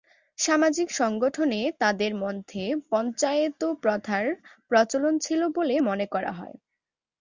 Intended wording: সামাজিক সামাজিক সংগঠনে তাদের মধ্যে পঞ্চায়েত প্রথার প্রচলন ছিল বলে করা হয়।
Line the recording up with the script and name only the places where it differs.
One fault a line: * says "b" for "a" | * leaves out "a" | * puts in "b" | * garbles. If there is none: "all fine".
* leaves out "সামাজিক"
* puts in "মনে"